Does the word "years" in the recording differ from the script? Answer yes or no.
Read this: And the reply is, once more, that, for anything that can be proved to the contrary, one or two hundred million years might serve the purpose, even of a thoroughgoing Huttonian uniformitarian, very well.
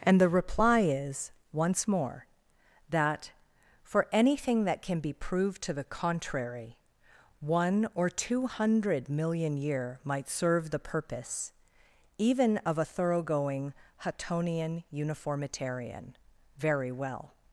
yes